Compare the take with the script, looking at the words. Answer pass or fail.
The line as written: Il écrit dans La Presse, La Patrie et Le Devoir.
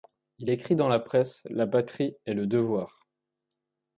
pass